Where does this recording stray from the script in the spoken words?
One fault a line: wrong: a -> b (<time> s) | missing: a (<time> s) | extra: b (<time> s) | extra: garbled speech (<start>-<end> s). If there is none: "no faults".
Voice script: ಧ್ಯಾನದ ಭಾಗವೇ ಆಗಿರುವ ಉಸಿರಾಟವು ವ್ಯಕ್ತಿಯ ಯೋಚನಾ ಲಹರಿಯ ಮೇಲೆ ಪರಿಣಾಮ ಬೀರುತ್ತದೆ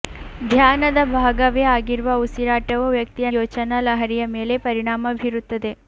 no faults